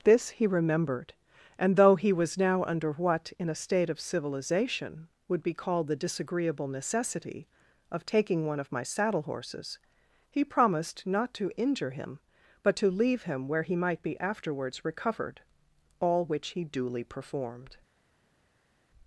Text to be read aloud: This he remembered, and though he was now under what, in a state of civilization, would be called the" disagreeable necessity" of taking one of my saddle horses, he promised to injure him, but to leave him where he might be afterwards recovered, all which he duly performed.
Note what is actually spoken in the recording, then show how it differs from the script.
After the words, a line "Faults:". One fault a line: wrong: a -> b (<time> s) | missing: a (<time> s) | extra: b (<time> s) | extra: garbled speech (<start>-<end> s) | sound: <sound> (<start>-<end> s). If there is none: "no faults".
This he remembered, and though he was now under what, in a state of civilization, would be called the" disagreeable necessity" of taking one of my saddle horses, he promised not to injure him, but to leave him where he might be afterwards recovered, all which he duly performed.
Faults:
extra: not (11.1 s)